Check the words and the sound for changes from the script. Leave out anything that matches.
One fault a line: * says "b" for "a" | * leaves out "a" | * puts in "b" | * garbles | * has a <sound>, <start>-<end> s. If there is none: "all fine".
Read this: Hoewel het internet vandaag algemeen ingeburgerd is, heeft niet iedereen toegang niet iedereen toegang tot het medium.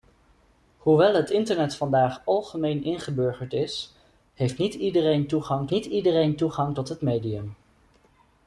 all fine